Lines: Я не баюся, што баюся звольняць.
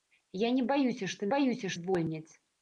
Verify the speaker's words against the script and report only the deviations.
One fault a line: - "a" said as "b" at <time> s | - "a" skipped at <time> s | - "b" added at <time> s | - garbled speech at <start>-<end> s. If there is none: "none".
none